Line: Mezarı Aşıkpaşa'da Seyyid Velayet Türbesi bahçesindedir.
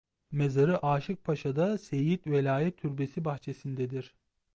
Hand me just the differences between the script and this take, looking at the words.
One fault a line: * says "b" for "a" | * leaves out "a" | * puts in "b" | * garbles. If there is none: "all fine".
all fine